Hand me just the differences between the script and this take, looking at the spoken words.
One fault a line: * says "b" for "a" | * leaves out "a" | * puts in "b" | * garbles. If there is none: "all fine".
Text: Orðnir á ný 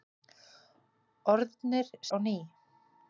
all fine